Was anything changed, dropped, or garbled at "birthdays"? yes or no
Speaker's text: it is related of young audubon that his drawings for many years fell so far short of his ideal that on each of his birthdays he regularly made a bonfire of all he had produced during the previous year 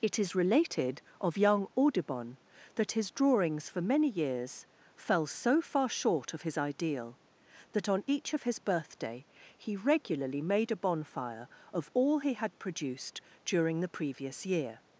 yes